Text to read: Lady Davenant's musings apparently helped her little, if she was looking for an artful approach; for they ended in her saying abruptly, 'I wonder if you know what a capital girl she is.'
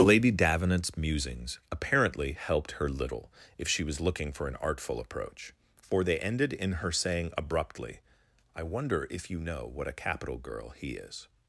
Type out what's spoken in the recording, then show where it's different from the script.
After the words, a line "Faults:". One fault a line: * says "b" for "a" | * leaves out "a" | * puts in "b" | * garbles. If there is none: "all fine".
Lady Davenant's musings apparently helped her little, if she was looking for an artful approach; for they ended in her saying abruptly, 'I wonder if you know what a capital girl he is.'
Faults:
* says "he" for "she"